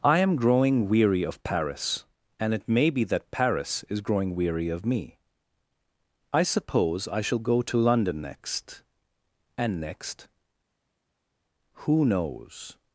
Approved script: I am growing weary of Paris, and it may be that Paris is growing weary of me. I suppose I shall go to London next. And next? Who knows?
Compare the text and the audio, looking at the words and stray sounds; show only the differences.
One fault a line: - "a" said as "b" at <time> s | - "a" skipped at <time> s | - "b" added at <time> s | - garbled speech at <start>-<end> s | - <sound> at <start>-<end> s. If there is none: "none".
none